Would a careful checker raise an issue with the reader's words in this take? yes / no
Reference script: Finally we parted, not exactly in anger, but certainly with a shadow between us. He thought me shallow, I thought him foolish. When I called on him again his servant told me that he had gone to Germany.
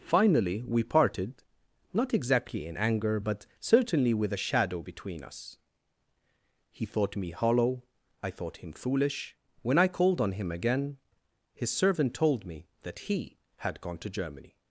yes